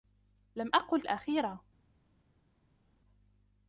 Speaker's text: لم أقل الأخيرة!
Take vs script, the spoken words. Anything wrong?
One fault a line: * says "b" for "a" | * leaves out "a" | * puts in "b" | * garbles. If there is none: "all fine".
all fine